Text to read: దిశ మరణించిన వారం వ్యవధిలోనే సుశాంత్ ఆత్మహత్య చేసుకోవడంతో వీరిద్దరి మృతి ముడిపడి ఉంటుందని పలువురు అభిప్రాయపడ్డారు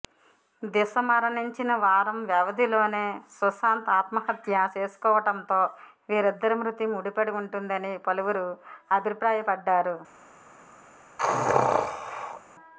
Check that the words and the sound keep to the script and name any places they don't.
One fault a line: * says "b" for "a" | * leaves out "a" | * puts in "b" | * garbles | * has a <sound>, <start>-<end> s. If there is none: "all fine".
* has a sneeze, 11.2-12.4 s